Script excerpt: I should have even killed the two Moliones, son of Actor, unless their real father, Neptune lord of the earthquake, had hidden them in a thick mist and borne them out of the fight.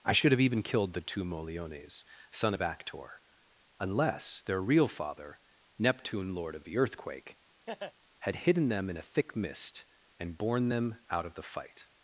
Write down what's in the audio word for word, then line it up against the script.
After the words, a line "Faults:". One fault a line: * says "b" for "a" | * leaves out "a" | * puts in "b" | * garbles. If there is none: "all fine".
I should have even killed the two Moliones, son of Actor, unless their real father, Neptune lord of the earthquake, had hidden them in a thick mist and borne them out of the fight.
Faults:
all fine